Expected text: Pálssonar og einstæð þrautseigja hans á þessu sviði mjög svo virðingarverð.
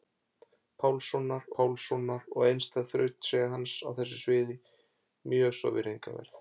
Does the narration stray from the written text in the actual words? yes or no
yes